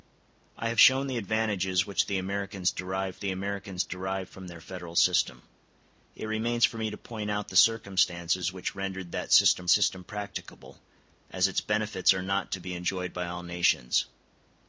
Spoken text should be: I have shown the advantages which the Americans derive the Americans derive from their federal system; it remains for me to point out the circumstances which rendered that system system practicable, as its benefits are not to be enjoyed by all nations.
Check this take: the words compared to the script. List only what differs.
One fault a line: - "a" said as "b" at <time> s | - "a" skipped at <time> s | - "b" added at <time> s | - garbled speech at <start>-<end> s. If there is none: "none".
none